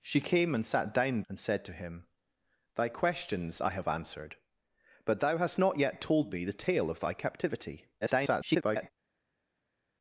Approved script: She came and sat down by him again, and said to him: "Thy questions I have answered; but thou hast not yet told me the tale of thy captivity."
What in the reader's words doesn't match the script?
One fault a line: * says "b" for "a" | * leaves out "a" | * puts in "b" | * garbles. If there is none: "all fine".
* leaves out "by him again"
* garbles